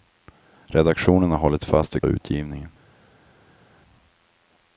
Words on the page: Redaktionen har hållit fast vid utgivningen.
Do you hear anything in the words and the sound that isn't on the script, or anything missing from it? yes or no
no